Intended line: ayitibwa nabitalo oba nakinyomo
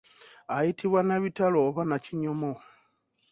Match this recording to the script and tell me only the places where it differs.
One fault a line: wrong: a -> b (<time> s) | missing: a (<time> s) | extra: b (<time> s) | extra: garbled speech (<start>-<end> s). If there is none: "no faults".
no faults